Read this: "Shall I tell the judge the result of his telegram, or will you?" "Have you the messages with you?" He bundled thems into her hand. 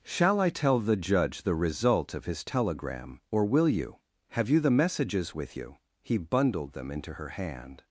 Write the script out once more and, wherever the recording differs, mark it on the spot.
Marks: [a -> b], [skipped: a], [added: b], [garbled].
"Shall I tell the judge the result of his telegram, or will you?" "Have you the messages with you?" He bundled [thems -> them] into her hand.